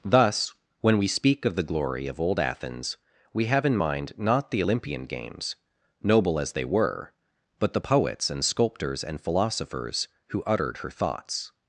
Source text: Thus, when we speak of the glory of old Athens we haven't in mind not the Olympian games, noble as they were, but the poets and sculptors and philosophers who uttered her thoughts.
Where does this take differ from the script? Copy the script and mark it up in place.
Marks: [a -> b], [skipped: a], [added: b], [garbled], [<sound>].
Thus, when we speak of the glory of old Athens we [haven't -> have] in mind not the Olympian games, noble as they were, but the poets and sculptors and philosophers who uttered her thoughts.